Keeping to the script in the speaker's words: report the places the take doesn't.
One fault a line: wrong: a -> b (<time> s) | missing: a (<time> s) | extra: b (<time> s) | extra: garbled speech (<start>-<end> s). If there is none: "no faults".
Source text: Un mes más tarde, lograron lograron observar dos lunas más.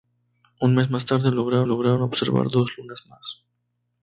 no faults